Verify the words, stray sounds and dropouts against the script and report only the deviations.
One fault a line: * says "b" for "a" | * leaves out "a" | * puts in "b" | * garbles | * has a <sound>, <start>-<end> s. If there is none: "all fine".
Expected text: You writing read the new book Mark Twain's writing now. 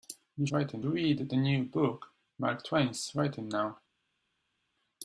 all fine